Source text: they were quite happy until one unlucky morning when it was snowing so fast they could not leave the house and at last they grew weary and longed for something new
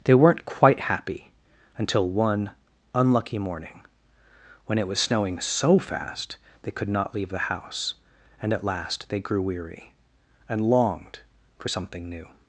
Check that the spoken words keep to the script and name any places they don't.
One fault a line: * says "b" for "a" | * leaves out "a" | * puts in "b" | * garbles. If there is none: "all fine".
* says "weren't" for "were"